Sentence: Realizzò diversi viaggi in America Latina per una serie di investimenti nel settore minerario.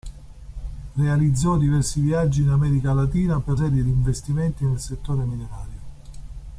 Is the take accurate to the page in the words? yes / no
no